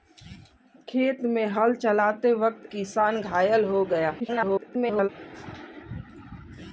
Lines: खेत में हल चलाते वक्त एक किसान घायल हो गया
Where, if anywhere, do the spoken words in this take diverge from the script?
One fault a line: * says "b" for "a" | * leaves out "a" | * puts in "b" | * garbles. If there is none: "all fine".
* leaves out "एक"
* garbles